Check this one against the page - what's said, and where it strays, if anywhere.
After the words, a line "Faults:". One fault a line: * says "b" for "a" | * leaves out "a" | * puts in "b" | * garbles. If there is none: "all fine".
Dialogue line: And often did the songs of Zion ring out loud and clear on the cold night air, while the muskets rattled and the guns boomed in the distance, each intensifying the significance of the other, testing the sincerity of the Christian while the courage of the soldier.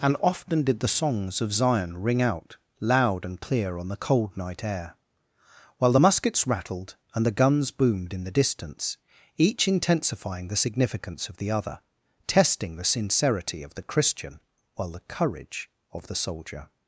And often did the songs of Zion ring out loud and clear on the cold night air, while the muskets rattled and the guns boomed in the distance, each intensifying the significance of the other, testing the sincerity of the Christian while the courage of the soldier.
Faults:
all fine